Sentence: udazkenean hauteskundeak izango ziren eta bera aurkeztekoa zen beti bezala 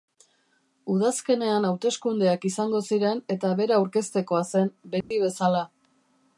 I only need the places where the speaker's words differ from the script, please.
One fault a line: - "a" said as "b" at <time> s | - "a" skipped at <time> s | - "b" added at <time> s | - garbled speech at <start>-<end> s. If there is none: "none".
none